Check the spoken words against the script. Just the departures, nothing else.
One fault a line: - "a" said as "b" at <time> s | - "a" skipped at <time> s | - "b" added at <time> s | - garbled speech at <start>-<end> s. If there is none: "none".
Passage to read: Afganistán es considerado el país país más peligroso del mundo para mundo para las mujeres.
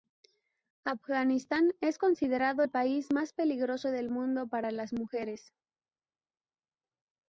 - "país" skipped at 3.1 s
- "mundo para" skipped at 4.7 s